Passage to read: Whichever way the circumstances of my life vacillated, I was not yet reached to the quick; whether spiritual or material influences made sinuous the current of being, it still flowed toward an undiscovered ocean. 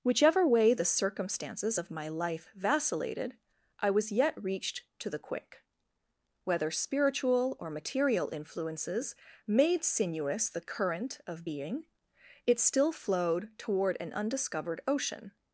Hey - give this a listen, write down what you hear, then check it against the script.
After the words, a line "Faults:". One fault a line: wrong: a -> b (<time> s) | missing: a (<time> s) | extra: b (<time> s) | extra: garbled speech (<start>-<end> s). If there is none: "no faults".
Whichever way the circumstances of my life vacillated, I was yet reached to the quick; whether spiritual or material influences made sinuous the current of being, it still flowed toward an undiscovered ocean.
Faults:
missing: not (4.1 s)